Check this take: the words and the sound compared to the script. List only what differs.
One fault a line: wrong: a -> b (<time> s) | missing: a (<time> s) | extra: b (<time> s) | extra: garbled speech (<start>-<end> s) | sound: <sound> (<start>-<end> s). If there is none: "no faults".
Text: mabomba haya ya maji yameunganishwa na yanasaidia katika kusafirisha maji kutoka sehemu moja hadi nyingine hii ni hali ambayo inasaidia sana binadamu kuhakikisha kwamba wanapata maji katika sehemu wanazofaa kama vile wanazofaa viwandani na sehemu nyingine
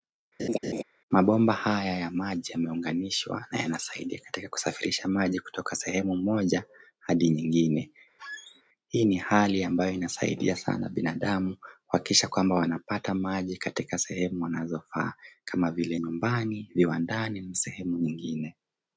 sound: laugh (0.4-0.8 s)
sound: squeak (8.2-8.6 s)
wrong: wanazofaa -> nyumbani (16.0 s)